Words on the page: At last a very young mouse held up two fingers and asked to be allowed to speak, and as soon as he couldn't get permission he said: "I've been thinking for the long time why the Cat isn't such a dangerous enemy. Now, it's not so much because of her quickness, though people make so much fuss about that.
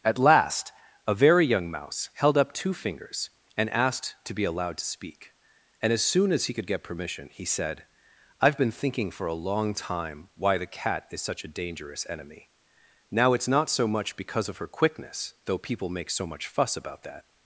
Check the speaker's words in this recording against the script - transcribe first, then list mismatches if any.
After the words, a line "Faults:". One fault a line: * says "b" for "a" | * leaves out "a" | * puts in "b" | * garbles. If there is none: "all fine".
At last a very young mouse held up two fingers and asked to be allowed to speak, and as soon as he could get permission he said: "I've been thinking for a long time why the Cat is such a dangerous enemy. Now, it's not so much because of her quickness, though people make so much fuss about that.
Faults:
* says "could" for "couldn't"
* says "a" for "the"
* says "is" for "isn't"